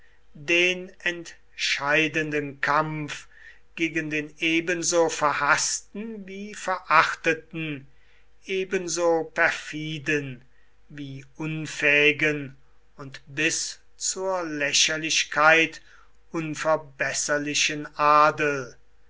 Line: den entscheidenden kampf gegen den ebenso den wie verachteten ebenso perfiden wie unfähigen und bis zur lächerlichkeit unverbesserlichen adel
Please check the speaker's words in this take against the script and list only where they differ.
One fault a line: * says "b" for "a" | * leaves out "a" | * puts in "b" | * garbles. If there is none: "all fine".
* says "verhaßten" for "den"